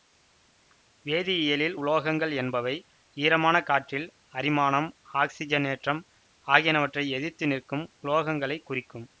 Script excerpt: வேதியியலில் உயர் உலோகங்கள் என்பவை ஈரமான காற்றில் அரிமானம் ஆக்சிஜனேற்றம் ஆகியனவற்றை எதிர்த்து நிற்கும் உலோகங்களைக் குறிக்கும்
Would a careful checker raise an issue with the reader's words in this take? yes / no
yes